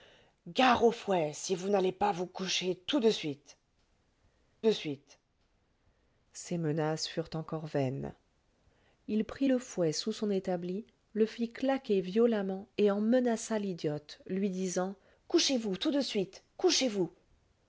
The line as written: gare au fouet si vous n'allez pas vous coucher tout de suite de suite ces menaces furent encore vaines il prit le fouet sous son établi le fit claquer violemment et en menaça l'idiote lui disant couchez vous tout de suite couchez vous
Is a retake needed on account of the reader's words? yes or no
no